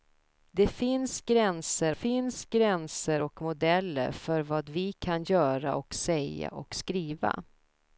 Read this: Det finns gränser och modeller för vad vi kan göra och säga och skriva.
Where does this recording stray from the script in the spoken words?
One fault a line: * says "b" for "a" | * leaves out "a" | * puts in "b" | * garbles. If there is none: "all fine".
* puts in "finns gränser"